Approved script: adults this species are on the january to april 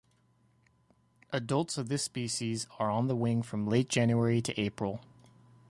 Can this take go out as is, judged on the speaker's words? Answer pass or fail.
fail